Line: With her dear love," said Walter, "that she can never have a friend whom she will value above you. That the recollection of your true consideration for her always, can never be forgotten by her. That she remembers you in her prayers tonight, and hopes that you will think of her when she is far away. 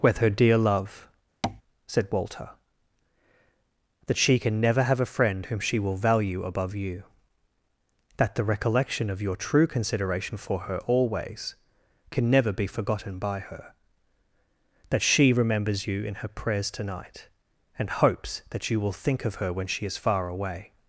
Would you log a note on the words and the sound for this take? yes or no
yes